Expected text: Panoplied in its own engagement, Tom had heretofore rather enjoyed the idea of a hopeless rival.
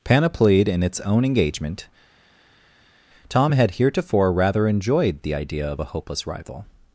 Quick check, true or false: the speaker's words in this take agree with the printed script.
true